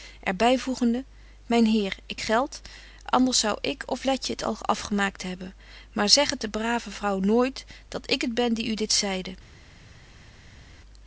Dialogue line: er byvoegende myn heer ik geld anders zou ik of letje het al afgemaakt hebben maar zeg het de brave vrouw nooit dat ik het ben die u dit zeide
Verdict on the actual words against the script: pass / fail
pass